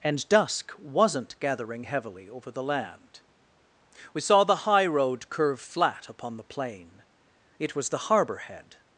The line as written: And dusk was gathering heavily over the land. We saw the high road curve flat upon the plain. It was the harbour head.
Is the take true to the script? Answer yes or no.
no